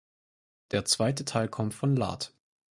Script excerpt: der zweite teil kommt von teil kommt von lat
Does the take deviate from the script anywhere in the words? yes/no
yes